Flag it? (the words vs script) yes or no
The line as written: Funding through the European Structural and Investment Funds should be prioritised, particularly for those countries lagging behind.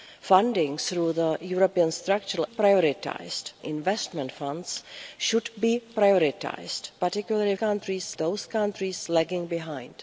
yes